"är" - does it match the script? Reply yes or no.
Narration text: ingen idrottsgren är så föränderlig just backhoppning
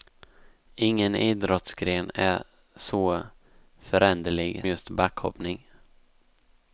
yes